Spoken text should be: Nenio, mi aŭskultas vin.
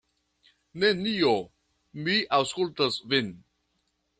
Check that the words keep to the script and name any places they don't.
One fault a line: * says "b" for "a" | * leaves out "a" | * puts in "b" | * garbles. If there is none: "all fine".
all fine